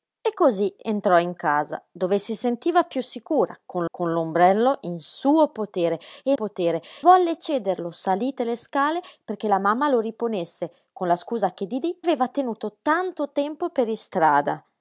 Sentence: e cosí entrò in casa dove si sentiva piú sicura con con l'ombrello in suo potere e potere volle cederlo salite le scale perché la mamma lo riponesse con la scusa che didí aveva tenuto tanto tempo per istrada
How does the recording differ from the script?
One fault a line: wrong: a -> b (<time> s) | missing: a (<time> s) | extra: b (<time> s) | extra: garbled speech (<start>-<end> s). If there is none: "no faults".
no faults